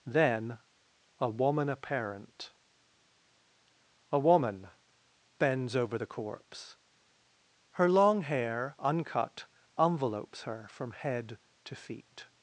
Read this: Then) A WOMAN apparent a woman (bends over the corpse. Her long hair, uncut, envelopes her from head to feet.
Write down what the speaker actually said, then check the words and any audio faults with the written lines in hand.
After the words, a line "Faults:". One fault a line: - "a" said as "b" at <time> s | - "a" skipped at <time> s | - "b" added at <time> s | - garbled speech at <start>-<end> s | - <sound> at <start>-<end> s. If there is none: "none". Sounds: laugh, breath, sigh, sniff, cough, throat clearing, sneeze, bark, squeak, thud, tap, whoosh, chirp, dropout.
Then) A WOMAN apparent a woman (bends over the corpse. Her long hair, uncut, envelopes her from head to feet.
Faults:
none